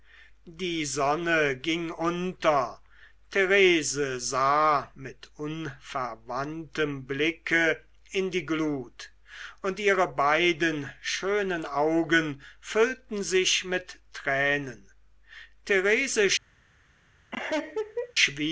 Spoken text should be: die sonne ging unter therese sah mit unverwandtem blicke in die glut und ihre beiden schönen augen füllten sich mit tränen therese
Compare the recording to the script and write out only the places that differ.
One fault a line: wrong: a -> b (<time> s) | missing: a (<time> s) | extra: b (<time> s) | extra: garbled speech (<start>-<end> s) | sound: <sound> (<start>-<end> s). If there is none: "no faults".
sound: laugh (17.3-18.1 s)